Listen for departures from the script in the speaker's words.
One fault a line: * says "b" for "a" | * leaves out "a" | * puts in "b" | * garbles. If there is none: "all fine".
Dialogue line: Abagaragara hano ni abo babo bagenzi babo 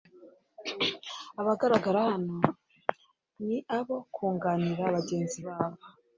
* says "kunganira" for "babo"